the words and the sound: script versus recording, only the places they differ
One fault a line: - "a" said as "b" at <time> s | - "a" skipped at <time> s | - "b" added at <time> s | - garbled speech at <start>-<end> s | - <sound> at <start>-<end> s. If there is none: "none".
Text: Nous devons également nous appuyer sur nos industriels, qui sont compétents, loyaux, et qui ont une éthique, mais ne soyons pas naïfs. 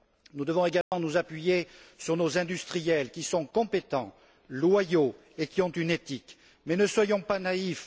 - dropout at 0.8-0.9 s